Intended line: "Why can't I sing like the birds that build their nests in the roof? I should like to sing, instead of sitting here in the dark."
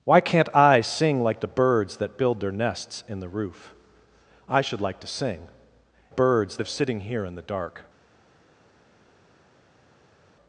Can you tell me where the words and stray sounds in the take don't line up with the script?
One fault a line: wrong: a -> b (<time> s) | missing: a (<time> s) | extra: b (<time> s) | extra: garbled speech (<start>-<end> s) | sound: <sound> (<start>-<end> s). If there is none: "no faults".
wrong: instead -> birds (6.1 s)